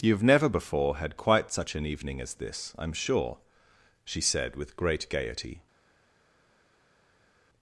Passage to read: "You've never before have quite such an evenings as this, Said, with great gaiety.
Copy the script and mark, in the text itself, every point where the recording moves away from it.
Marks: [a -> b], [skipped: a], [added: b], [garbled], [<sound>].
"You've never before [have -> had] quite such an [evenings -> evening] as this, [added: I'm sure she] Said, with great gaiety.